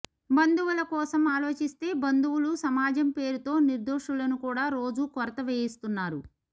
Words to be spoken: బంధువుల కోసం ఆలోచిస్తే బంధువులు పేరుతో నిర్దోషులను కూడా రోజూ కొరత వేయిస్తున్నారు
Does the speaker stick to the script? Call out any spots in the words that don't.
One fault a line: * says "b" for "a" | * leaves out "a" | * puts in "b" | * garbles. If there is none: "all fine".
* puts in "సమాజం"